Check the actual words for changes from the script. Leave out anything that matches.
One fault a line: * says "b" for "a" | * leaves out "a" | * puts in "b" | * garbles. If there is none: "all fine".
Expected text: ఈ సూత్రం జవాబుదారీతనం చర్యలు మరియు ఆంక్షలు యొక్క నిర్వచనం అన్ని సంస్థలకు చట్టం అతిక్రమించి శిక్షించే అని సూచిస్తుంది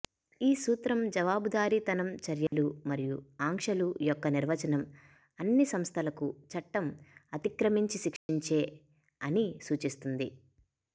all fine